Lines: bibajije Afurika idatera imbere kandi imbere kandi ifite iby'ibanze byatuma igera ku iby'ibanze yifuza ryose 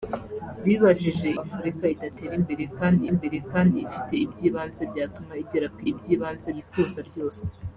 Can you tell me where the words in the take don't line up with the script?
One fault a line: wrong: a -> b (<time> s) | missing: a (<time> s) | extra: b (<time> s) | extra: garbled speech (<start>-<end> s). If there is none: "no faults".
no faults